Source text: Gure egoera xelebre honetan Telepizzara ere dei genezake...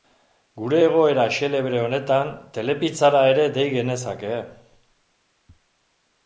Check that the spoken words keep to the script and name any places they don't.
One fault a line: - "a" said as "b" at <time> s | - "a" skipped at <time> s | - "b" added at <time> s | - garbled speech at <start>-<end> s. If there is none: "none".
none